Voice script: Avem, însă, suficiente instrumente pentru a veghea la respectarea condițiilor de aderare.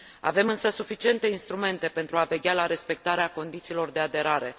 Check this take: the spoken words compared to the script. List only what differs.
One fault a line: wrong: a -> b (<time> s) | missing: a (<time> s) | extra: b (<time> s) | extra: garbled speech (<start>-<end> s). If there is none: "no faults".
no faults